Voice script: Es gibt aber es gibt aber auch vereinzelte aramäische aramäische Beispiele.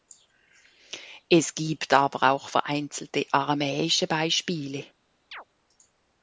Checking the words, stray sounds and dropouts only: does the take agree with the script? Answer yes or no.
no